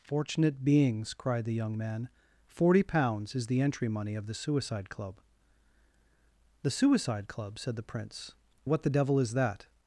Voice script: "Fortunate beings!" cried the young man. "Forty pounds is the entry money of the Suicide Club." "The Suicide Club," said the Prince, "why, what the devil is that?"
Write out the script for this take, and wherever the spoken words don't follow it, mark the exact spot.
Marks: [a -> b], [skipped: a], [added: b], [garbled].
"Fortunate beings!" cried the young man. "Forty pounds is the entry money of the Suicide Club." "The Suicide Club," said the Prince, [skipped: "why,] what the devil is that?"